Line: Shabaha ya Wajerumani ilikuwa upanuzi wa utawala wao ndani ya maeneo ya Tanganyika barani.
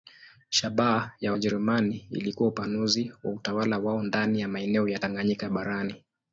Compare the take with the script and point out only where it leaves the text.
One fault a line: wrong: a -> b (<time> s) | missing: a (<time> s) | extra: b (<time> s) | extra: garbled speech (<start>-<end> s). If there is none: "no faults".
no faults